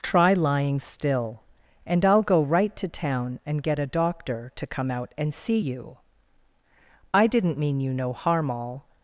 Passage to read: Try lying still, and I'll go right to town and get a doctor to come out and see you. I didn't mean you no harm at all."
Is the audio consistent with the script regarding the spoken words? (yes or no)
no